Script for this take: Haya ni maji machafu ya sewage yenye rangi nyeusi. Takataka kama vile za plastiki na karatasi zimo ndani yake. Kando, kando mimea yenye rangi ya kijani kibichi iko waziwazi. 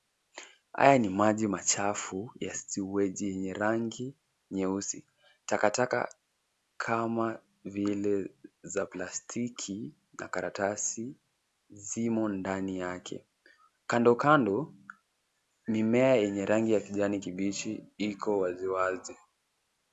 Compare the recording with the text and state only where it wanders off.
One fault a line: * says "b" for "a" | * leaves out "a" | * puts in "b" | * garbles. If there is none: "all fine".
all fine